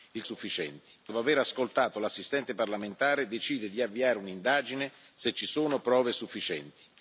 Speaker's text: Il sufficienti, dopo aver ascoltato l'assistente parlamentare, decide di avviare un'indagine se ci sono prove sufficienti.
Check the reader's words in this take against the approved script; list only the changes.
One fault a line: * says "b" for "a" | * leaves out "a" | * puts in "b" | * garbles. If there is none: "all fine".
all fine